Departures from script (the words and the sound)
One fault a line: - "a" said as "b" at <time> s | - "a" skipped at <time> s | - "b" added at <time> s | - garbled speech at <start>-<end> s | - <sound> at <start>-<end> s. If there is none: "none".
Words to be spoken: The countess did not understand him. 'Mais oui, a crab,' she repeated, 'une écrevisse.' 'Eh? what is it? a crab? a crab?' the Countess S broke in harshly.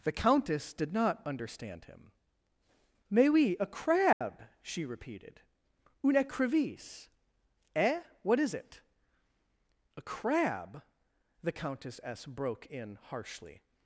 - dropout at 4.1-4.2 s
- "a crab" skipped at 10.8 s